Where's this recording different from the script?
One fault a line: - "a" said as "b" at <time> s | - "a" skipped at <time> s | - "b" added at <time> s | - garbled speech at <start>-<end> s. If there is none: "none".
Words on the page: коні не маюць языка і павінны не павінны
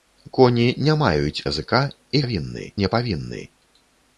none